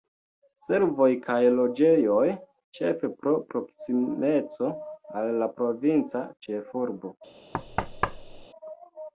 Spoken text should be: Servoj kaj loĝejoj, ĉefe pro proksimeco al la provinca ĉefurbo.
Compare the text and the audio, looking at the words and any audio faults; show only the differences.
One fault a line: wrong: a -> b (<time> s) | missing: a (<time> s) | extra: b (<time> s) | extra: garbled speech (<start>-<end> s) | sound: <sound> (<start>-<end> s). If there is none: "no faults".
sound: thud (7.5-8.5 s)